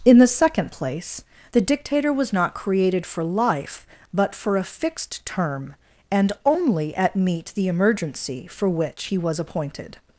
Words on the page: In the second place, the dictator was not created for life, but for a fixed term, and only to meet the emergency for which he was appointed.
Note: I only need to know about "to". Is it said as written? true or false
false